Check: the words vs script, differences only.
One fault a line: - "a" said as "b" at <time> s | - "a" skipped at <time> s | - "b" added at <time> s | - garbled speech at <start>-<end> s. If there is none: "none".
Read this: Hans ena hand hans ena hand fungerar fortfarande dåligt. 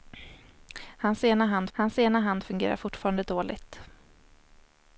none